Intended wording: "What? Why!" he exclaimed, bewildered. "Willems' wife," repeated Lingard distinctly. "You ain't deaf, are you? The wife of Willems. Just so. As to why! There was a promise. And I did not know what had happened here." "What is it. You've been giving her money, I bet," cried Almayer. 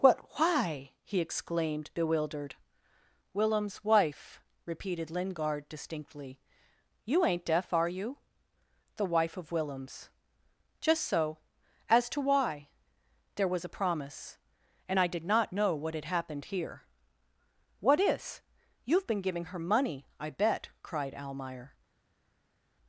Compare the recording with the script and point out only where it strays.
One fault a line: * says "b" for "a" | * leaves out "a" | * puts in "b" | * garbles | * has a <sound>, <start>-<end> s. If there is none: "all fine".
* leaves out "it"